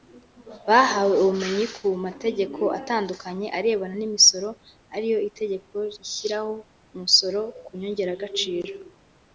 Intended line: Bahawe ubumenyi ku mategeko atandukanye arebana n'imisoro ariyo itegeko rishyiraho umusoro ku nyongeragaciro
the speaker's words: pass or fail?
pass